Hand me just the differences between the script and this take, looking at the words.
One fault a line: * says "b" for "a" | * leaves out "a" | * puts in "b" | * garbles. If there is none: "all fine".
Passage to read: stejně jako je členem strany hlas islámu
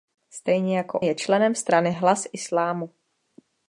all fine